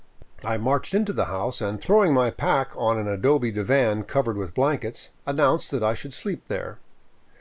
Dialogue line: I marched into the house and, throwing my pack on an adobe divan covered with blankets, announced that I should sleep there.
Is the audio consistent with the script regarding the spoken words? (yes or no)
yes